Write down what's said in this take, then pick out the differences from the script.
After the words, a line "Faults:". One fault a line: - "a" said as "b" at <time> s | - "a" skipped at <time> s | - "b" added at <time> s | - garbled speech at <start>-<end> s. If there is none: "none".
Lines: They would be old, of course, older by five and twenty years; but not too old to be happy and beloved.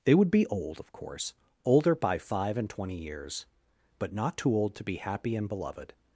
They would be old, of course, older by five and twenty years; but not too old to be happy and beloved.
Faults:
none